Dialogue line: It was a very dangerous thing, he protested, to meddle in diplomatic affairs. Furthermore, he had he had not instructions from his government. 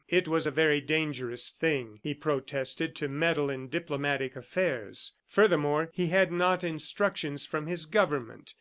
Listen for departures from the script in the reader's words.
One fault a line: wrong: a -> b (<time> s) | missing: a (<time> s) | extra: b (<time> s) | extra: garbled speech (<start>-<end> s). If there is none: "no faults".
missing: he had (6.3 s)